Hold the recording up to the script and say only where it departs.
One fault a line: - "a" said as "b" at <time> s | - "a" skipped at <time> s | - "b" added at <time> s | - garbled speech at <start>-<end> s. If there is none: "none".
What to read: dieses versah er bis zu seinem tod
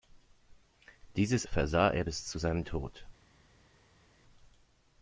none